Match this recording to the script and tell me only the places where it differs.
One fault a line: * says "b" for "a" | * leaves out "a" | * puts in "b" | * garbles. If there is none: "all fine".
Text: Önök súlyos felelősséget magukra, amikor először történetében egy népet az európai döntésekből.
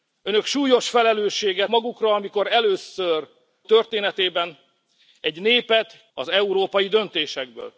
all fine